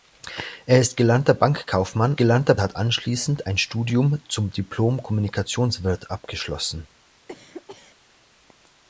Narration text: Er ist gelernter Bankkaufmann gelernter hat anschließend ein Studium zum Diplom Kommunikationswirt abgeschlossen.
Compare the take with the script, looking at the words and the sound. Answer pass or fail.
fail